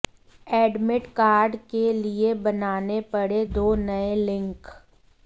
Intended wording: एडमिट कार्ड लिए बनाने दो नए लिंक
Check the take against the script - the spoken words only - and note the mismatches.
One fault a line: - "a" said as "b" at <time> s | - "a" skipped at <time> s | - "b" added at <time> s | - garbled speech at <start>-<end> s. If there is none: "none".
- "के" added at 1.7 s
- "पड़े" added at 3.1 s